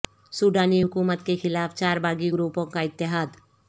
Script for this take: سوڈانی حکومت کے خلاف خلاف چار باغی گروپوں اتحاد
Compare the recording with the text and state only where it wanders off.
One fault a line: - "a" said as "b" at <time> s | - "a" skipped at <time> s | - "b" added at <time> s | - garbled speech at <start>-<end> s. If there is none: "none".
- "خلاف" skipped at 1.8 s
- "کا" added at 2.7 s